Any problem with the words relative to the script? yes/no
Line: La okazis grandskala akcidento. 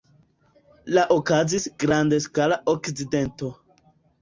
no